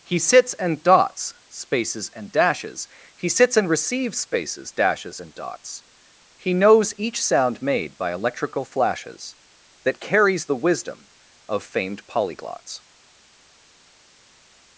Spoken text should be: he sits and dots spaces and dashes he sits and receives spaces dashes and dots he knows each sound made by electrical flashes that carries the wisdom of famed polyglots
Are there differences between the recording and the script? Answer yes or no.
no